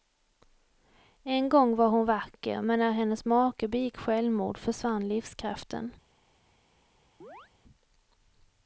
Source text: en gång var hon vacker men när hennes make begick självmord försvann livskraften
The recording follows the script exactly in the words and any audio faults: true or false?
false